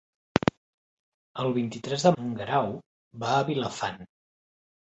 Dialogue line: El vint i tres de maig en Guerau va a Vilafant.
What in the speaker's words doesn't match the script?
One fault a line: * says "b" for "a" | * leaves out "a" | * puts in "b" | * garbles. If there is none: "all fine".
* leaves out "maig"